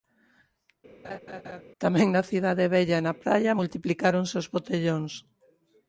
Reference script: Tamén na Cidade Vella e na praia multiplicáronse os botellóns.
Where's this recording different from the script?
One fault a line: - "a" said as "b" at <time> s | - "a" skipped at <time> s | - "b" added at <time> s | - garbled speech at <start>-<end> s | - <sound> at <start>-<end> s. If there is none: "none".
- laugh at 1.0-1.6 s